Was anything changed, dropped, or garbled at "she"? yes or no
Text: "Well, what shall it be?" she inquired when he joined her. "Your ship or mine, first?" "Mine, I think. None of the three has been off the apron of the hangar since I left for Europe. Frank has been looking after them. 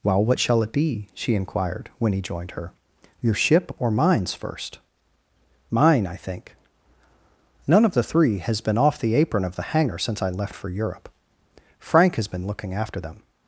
no